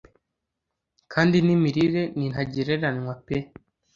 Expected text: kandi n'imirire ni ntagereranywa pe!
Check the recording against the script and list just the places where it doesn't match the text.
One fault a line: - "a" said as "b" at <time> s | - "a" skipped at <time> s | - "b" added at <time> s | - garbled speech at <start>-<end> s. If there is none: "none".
none